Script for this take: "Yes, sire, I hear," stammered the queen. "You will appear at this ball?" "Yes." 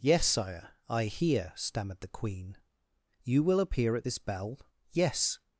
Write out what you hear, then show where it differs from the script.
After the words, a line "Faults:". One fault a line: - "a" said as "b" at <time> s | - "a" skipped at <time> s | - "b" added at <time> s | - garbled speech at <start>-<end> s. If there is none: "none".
"Yes, sire, I hear," stammered the queen. "You will appear at this bell?" "Yes."
Faults:
- "ball" said as "bell" at 4.2 s